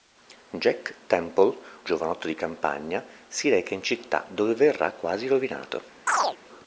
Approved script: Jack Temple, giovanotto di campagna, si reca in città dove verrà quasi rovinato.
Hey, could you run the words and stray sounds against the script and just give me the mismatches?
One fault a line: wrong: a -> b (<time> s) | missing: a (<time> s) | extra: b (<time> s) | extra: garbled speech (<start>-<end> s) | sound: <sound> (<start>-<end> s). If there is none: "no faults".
sound: chirp (6.1-6.4 s)